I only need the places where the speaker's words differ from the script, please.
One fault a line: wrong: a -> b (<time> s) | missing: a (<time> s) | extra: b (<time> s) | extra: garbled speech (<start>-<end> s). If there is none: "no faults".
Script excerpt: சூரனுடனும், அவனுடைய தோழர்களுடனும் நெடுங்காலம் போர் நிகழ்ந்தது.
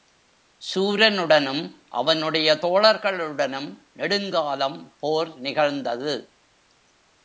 no faults